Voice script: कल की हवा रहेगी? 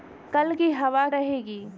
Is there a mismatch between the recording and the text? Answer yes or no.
no